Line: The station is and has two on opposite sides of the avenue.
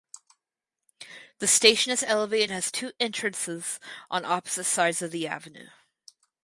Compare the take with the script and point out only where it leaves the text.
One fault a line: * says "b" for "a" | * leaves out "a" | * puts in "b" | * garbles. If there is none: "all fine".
* puts in "elevated"
* puts in "entrances"